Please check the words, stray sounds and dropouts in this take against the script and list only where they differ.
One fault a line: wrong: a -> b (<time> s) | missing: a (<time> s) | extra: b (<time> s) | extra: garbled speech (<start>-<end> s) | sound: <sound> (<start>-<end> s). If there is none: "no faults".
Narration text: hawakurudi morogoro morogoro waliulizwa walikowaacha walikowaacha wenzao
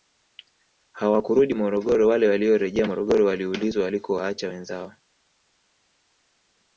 extra: wale waliorejea (2.1 s)
missing: walikowaacha (4.5 s)